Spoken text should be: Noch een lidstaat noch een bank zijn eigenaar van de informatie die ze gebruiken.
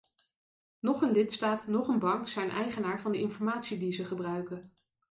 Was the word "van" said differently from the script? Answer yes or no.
no